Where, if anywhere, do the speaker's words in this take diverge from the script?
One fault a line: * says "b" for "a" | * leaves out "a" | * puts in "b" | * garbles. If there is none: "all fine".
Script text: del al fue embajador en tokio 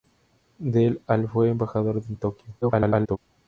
* garbles